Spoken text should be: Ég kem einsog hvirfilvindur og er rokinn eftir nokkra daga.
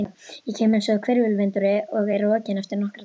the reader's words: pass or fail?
pass